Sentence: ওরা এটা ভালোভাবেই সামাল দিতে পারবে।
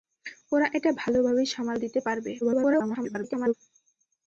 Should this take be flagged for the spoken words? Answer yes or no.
yes